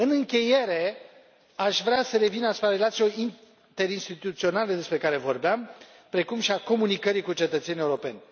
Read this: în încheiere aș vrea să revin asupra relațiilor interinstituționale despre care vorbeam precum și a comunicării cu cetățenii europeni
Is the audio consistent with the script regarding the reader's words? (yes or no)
yes